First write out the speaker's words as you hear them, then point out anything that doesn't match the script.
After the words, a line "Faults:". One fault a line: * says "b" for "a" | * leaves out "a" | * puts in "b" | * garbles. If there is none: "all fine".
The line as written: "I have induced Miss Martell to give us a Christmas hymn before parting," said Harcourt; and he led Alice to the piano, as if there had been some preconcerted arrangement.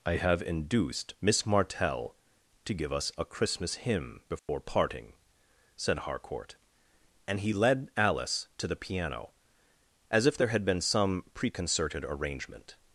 "I have induced Miss Martell to give us a Christmas hymn before parting," said Harcourt; and he led Alice to the piano, as if there had been some preconcerted arrangement.
Faults:
all fine